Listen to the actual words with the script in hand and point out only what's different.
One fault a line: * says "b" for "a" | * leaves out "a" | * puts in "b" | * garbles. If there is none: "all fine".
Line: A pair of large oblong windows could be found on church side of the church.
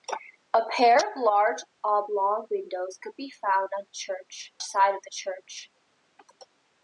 all fine